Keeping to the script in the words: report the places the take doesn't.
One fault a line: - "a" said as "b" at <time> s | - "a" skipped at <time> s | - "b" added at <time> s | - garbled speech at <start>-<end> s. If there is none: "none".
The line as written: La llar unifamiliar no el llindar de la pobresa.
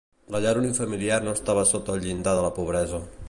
- "estava sota" added at 1.4 s